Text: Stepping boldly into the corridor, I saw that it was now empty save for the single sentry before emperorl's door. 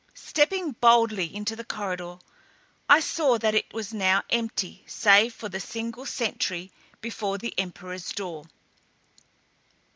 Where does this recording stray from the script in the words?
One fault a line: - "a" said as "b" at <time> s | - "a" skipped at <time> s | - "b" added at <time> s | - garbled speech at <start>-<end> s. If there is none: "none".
- "the" added at 7.4 s